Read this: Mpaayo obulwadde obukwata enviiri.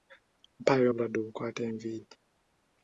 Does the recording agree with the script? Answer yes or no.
yes